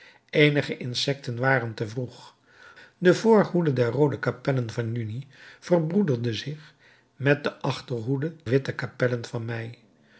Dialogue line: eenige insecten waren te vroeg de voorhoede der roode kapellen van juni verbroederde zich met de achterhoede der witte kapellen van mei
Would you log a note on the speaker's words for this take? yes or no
yes